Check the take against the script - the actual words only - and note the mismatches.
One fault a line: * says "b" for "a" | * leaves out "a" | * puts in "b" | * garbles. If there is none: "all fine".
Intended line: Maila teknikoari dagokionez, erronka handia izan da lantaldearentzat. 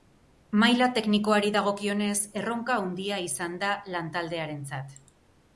all fine